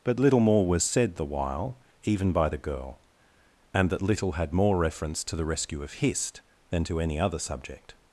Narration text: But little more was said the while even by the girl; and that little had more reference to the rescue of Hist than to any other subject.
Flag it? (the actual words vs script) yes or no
no